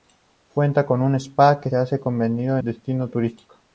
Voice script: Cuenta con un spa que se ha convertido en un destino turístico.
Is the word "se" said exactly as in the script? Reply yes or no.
no